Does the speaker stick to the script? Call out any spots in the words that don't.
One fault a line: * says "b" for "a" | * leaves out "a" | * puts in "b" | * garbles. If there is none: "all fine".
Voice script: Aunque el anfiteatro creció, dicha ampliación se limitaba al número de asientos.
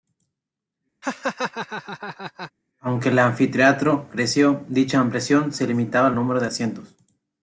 all fine